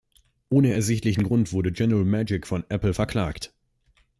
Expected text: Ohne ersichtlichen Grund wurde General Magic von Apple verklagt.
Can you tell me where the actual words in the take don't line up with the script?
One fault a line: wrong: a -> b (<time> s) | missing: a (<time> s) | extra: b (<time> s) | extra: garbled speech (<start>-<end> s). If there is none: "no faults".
no faults